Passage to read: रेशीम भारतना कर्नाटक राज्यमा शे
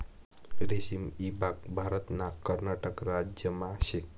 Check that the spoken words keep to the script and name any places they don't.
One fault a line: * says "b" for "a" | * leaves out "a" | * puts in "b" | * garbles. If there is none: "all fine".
* puts in "ईभाग"